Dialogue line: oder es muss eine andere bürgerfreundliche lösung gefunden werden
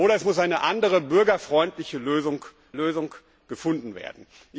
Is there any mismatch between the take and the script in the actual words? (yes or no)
yes